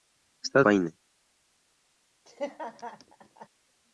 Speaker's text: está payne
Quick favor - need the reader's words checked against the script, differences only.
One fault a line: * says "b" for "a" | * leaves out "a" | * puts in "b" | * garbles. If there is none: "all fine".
all fine